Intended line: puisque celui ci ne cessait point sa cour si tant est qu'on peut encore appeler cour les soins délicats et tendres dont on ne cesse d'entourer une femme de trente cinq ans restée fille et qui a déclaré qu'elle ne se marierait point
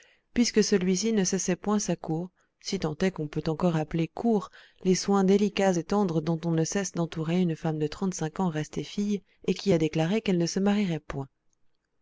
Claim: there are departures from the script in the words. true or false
false